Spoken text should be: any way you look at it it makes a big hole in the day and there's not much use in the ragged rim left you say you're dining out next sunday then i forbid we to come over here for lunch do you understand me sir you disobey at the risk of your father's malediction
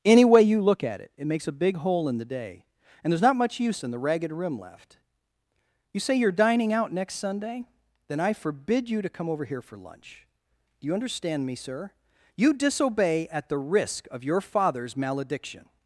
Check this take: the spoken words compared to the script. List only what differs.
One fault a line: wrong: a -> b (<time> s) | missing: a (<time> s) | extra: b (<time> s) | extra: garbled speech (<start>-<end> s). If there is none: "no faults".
wrong: we -> you (8.9 s)